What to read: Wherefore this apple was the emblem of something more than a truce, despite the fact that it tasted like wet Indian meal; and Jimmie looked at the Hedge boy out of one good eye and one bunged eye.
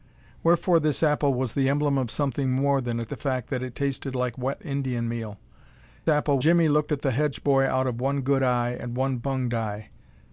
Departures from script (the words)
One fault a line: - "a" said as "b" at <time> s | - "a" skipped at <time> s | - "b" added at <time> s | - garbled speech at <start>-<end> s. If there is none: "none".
- "truce despite" skipped at 3.0 s
- "and" said as "apple" at 6.1 s